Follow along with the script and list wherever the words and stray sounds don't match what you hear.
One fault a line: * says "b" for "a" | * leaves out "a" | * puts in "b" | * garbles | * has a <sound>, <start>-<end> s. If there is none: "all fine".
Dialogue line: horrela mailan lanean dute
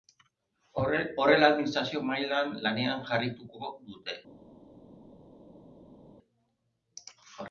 * puts in "administrazio"
* puts in "jarraituko"